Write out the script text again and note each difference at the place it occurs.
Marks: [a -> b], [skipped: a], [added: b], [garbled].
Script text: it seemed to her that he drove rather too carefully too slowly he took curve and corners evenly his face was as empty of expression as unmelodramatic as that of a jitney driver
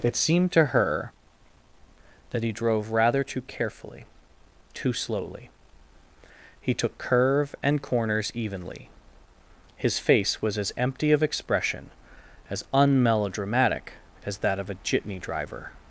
it seemed to her that he drove rather too carefully too slowly he took curve and corners evenly his face was as empty of expression as unmelodramatic as that of a jitney driver